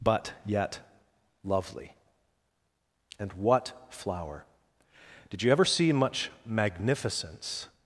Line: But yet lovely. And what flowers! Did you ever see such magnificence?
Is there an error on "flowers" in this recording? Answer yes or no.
yes